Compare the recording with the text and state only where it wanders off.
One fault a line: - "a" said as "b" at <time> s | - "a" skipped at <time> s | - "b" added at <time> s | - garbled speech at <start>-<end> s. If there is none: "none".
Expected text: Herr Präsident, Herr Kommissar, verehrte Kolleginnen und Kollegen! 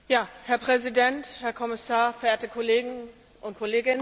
none